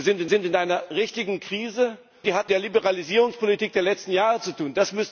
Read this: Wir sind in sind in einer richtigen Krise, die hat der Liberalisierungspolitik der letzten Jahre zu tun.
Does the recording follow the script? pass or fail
pass